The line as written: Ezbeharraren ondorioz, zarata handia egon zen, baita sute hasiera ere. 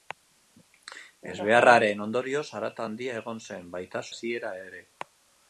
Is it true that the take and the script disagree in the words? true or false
true